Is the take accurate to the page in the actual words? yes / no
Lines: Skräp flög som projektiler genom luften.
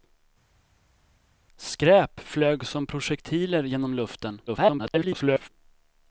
no